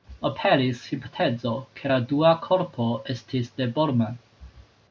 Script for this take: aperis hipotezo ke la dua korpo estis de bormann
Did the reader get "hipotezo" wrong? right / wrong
right